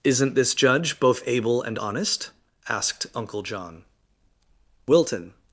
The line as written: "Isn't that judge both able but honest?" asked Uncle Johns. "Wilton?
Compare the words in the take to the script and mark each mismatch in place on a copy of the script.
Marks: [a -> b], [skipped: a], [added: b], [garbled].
"Isn't [that -> this] judge both able [but -> and] honest?" asked Uncle [Johns. -> John] "Wilton?